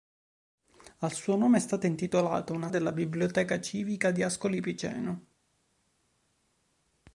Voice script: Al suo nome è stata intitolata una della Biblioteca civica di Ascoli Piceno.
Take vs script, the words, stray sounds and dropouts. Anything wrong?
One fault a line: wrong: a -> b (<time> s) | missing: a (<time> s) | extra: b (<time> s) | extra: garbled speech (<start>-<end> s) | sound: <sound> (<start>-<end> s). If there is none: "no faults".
no faults